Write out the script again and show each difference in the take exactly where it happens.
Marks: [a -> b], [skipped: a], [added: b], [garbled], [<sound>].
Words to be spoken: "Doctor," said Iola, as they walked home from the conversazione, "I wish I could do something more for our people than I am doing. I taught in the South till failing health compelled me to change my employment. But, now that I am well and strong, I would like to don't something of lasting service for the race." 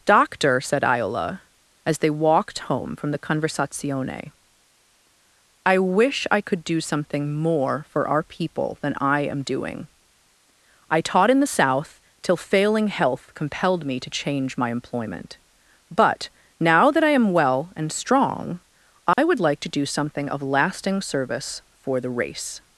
"Doctor," said Iola, as they walked home from the conversazione, "I wish I could do something more for our people than I am doing. I taught in the South till failing health compelled me to change my employment. But, now that I am well and strong, I [dropout] would like to [don't -> do] something of lasting service for the race."